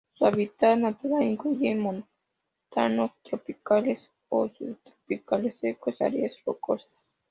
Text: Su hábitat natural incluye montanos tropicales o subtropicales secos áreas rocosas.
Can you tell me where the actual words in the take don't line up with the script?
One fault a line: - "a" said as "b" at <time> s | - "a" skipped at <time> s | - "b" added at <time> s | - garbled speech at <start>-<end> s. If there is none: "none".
none